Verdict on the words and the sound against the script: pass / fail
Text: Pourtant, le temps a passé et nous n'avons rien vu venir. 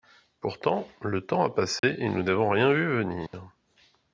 fail